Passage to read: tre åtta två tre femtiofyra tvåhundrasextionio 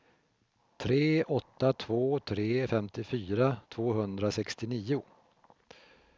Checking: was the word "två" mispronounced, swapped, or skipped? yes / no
no